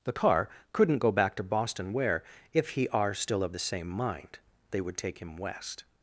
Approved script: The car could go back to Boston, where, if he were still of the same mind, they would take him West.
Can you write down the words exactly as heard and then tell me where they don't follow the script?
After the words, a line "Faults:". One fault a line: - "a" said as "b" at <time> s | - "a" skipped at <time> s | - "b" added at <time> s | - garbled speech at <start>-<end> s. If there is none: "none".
The car couldn't go back to Boston, where, if he are still of the same mind, they would take him West.
Faults:
- "could" said as "couldn't" at 0.7 s
- "were" said as "are" at 2.9 s